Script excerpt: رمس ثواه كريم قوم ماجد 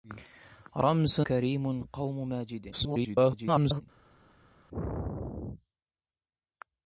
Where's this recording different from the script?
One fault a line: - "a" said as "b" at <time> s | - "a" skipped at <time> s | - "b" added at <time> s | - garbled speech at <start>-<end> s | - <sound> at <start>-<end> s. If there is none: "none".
- "ثواه" skipped at 1.2 s
- garbled speech at 2.7-3.8 s